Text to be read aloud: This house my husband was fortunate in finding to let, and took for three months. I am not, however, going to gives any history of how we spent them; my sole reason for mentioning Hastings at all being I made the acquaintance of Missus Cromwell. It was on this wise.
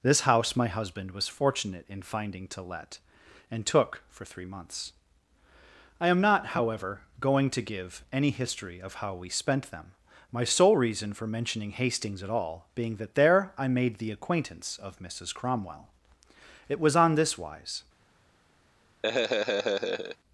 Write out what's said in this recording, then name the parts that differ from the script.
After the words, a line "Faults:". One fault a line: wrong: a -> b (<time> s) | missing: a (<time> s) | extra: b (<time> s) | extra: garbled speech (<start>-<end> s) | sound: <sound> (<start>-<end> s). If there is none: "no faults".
This house my husband was fortunate in finding to let, and took for three months. I am not, however, going to give any history of how we spent them; my sole reason for mentioning Hastings at all being that there I made the acquaintance of Missus Cromwell. It was on this wise.
Faults:
wrong: gives -> give (7.6 s)
extra: that there (13.0 s)
sound: laugh (19.0-20.2 s)